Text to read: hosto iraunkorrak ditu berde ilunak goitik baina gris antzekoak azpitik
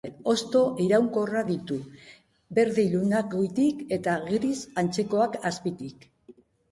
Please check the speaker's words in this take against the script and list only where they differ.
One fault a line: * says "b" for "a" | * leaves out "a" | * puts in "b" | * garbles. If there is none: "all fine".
* says "eta" for "baina"